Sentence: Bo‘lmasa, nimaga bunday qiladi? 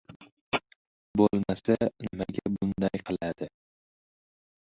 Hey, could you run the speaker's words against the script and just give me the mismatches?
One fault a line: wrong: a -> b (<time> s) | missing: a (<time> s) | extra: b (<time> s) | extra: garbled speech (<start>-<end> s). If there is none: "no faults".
no faults